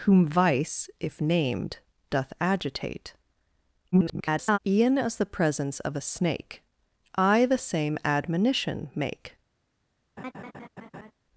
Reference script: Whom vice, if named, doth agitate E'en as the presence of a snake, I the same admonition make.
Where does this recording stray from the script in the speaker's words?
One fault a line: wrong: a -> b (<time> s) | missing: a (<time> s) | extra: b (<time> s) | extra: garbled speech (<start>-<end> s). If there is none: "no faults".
extra: garbled speech (3.9-4.6 s)